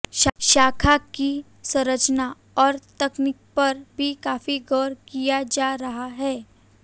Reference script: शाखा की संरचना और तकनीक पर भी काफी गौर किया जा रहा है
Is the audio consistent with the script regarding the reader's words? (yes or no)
yes